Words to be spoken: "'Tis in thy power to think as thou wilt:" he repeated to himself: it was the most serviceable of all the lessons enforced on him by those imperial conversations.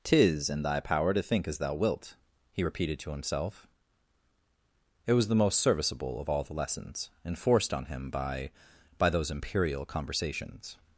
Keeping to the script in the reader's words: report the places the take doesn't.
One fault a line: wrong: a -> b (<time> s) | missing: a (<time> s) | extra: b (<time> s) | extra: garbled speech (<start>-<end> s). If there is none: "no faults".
extra: by (9.0 s)